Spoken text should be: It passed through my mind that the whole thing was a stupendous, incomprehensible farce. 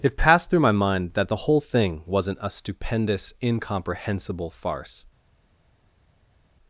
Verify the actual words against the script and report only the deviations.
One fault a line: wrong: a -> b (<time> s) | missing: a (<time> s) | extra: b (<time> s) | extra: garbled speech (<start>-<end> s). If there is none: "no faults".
wrong: was -> wasn't (2.1 s)